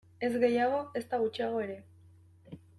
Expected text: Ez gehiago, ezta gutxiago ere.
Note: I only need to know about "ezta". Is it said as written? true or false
true